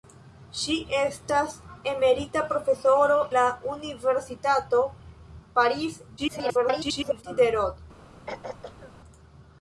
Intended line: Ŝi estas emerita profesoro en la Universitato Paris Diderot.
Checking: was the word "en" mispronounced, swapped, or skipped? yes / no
yes